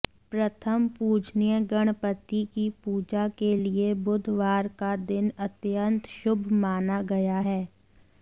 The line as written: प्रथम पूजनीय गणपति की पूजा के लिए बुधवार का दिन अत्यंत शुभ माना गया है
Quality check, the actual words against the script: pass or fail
pass